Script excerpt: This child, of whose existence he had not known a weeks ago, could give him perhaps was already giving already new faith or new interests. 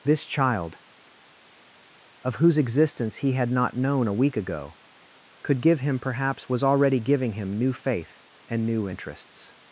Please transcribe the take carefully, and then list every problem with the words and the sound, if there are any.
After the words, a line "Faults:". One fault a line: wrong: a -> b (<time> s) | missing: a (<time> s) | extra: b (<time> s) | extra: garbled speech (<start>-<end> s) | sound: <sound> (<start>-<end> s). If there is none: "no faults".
This child, of whose existence he had not known a week ago, could give him perhaps was already giving him new faith and new interests.
Faults:
wrong: weeks -> week (4.1 s)
wrong: already -> him (7.3 s)
wrong: or -> and (8.5 s)